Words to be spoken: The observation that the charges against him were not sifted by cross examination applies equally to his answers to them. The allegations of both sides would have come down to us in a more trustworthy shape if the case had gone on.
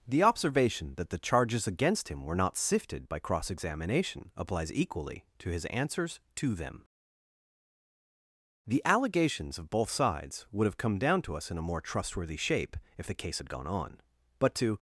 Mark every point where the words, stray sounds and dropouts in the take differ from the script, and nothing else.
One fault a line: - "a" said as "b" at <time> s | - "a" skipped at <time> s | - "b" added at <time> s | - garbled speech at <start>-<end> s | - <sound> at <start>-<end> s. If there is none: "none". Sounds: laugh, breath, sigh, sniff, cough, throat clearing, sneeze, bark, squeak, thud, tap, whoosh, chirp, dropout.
- "But to" added at 14.4 s